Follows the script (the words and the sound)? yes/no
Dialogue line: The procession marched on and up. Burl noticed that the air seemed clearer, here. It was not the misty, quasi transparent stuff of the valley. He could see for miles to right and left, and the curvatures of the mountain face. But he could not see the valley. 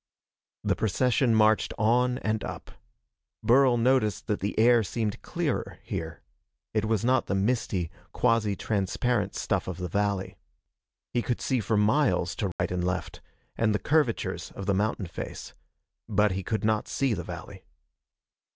no